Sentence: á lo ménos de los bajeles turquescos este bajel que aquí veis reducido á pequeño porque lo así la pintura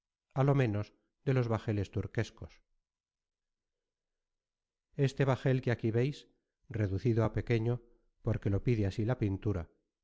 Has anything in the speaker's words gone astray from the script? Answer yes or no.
yes